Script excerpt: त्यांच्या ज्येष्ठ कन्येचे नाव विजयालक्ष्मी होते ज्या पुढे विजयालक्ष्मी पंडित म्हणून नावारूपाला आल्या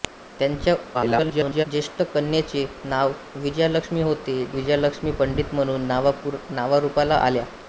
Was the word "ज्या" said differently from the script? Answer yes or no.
yes